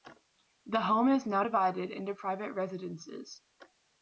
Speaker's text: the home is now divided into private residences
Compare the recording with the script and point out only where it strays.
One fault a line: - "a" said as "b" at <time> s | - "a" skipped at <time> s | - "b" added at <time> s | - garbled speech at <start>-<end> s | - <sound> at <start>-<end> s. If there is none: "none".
none